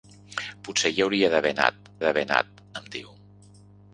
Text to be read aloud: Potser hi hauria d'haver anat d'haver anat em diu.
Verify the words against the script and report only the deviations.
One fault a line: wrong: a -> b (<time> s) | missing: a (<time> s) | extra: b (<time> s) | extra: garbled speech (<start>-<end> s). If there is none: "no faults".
no faults